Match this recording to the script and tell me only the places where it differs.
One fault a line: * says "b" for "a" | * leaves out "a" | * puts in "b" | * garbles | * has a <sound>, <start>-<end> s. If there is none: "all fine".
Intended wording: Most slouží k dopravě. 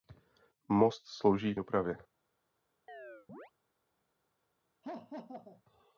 * has a chirp, 2.9-3.5 s
* has a laugh, 4.8-5.6 s